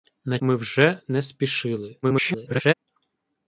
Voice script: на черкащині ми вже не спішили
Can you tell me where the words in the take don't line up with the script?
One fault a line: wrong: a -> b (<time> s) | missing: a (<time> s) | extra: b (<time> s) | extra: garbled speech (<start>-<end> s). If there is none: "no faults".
missing: черкащині (0.4 s)
extra: garbled speech (2.0-2.7 s)